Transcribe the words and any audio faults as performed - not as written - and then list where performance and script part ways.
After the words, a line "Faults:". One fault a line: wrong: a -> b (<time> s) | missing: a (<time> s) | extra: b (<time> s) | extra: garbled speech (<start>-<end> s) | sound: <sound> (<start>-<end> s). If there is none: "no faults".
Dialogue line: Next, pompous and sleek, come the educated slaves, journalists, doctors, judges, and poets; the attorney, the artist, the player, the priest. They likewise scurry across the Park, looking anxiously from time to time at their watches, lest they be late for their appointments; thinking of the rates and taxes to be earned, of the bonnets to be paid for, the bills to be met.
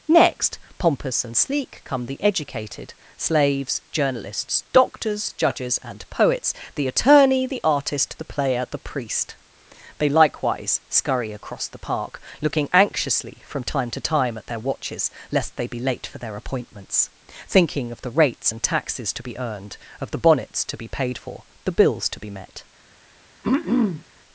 Next, pompous and sleek, come the educated slaves, journalists, doctors, judges, and poets; the attorney, the artist, the player, the priest. They likewise scurry across the Park, looking anxiously from time to time at their watches, lest they be late for their appointments; thinking of the rates and taxes to be earned, of the bonnets to be paid for, the bills to be met.
Faults:
sound: throat clearing (23.4-24.0 s)